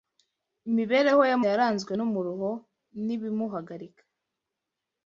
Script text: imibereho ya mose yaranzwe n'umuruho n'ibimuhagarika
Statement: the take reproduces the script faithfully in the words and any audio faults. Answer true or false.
false